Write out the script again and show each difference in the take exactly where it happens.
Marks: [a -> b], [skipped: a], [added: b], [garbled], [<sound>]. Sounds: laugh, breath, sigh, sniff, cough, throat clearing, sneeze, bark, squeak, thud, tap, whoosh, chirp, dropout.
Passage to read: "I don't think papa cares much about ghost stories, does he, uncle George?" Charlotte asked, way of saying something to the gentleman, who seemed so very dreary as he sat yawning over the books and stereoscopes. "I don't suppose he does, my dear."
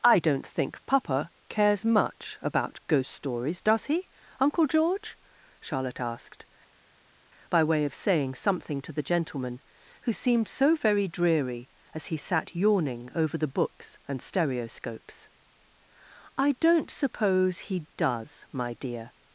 "I don't think papa cares much about ghost stories, does he, uncle George?" Charlotte asked, [added: by] way of saying something to the gentleman, who seemed so very dreary as he sat yawning over the books and stereoscopes. "I don't suppose he does, my dear."